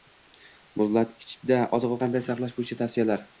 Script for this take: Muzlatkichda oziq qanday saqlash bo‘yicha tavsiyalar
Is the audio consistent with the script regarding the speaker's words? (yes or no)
yes